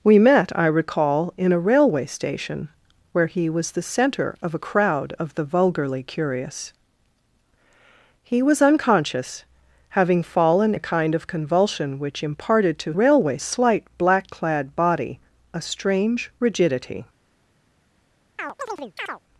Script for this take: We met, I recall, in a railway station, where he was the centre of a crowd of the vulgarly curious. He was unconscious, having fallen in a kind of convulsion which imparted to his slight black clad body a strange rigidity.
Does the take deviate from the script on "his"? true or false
true